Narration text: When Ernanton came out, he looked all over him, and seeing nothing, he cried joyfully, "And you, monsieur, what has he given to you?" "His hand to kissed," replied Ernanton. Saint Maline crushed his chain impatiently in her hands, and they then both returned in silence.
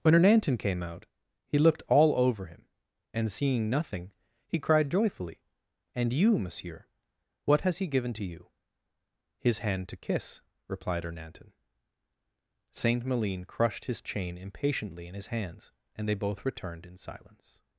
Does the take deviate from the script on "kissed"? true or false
true